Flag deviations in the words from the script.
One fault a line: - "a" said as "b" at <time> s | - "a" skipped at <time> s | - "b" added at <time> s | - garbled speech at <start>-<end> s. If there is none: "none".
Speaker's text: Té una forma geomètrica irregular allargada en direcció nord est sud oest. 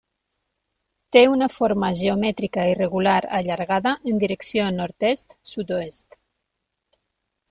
none